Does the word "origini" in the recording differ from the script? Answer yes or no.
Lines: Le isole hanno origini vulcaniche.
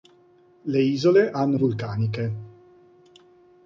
yes